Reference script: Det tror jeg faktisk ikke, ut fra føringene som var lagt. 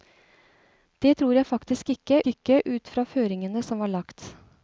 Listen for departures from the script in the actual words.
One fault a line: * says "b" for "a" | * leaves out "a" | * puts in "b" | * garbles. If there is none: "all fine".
* puts in "ikke"